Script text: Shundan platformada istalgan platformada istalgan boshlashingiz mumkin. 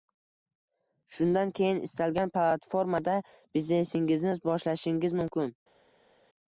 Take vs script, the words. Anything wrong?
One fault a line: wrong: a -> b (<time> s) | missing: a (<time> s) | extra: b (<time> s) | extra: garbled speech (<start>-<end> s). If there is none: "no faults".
wrong: platformada -> keyin (1.6 s)
wrong: istalgan -> biznesingizni (3.5 s)